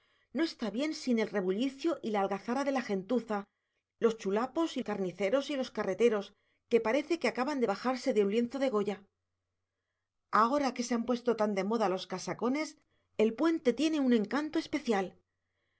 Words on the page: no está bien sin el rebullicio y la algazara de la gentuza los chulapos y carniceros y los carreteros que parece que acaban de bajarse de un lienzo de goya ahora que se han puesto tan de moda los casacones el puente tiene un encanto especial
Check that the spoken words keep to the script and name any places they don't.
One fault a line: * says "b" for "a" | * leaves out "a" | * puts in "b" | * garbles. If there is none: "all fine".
all fine